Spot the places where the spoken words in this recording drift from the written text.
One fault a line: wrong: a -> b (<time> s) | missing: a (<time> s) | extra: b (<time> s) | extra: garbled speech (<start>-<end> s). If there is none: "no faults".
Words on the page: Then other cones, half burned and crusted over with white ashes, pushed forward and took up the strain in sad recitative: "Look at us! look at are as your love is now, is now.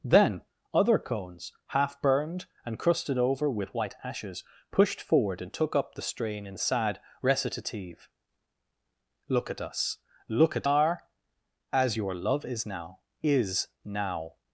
no faults